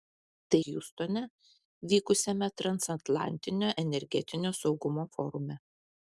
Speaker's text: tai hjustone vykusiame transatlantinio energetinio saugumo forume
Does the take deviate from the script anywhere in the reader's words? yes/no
no